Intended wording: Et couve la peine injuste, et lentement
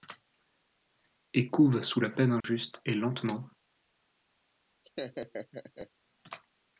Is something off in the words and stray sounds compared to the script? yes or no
yes